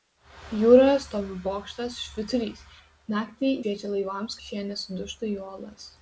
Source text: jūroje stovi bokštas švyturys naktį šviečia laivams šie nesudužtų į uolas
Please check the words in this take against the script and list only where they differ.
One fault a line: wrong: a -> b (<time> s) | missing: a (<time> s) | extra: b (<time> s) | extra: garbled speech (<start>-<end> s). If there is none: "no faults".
no faults